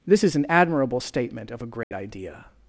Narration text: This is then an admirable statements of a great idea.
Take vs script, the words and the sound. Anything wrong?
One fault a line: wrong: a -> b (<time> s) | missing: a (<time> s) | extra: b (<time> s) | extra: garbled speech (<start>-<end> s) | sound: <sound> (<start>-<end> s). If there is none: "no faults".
missing: then (0.3 s)
wrong: statements -> statement (1.0 s)
sound: dropout (1.8-1.9 s)